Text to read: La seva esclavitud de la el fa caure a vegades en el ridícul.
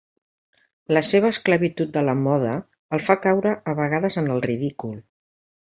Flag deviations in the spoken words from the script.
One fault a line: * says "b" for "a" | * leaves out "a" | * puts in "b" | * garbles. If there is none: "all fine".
* puts in "moda"